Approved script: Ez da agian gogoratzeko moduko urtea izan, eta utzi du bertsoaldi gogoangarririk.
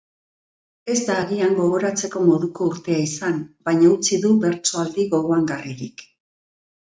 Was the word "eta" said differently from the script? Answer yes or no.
yes